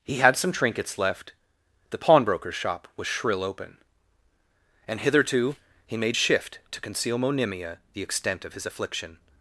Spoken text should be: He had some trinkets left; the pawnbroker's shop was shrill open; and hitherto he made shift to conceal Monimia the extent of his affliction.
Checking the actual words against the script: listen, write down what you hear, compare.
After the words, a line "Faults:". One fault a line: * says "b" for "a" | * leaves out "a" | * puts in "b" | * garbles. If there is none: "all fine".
He had some trinkets left; the pawnbroker's shop was shrill open; and hitherto he made shift to conceal Monimia the extent of his affliction.
Faults:
all fine